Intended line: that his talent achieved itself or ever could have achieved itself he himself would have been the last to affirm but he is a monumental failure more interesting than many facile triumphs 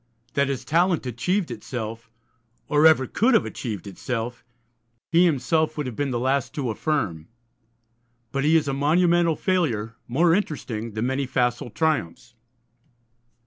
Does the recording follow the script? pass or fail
pass